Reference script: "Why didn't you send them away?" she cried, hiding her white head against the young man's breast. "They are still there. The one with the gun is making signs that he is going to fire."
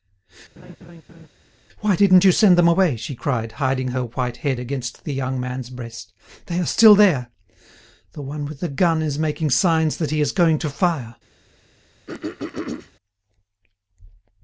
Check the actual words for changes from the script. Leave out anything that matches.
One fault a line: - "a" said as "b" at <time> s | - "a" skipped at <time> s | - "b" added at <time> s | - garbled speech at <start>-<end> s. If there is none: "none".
none